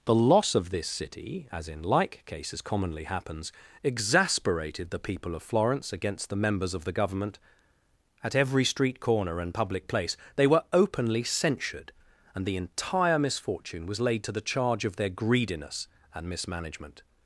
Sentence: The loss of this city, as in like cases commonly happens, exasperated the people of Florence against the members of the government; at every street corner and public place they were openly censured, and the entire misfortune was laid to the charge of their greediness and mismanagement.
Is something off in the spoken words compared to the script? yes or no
no